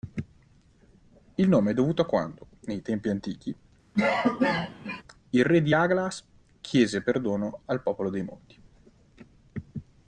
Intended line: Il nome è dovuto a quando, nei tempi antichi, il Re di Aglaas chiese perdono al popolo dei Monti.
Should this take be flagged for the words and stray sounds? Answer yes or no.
yes